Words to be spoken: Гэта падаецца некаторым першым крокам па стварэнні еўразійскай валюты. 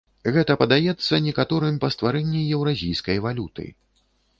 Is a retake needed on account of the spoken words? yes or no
yes